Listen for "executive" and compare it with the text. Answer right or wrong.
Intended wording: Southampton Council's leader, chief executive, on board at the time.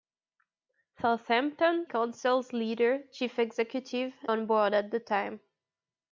right